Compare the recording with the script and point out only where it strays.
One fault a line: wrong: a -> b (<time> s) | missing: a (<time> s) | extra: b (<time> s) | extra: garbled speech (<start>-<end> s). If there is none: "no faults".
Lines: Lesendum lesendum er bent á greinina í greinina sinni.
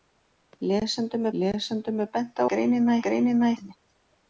no faults